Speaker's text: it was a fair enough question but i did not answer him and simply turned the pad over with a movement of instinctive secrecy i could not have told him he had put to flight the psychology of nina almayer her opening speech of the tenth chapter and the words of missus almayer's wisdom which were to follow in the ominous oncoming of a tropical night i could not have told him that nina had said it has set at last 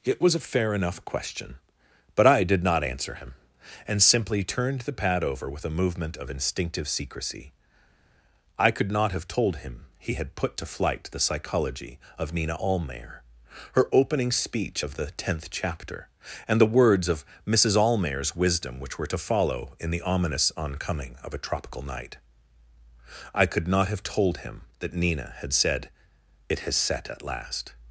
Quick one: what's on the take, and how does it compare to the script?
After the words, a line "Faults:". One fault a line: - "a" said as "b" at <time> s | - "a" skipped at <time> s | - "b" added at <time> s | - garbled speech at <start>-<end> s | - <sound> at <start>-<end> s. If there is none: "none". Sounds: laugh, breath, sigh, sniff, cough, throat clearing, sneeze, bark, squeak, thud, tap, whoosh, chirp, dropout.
it was a fair enough question but i did not answer him and simply turned the pad over with a movement of instinctive secrecy i could not have told him he had put to flight the psychology of nina almayer her opening speech of the tenth chapter and the words of missus almayer's wisdom which were to follow in the ominous oncoming of a tropical night i could not have told him that nina had said it has set at last
Faults:
none